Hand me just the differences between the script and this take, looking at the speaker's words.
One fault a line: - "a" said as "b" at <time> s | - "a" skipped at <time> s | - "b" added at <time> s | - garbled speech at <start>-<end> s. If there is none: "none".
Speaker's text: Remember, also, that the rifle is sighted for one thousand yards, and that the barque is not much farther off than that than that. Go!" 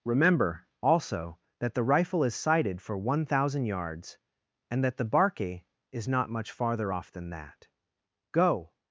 - "than that" skipped at 7.7 s